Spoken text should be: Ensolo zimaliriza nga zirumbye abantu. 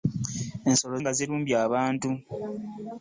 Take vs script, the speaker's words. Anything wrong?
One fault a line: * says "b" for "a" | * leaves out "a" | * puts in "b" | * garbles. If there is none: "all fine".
* leaves out "zimaliriza"